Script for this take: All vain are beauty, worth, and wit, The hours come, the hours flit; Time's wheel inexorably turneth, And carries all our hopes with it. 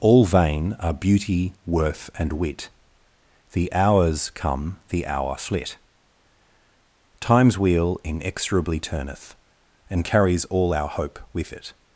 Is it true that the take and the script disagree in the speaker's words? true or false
true